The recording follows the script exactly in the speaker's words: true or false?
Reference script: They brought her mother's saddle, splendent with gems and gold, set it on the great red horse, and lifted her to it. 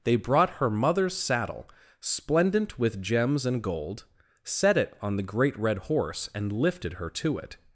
true